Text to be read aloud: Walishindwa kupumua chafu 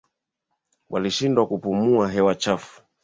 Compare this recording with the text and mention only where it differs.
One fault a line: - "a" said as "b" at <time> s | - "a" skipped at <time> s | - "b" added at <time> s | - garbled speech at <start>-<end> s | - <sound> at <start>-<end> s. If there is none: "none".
- "hewa" added at 2.1 s